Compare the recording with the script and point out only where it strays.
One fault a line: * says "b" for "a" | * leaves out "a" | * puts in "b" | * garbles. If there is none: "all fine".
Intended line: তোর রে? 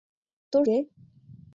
all fine